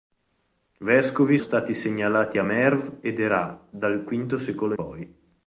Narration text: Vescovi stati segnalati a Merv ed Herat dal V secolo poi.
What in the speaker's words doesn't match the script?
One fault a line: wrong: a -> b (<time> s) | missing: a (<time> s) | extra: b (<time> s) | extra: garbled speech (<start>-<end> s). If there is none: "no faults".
no faults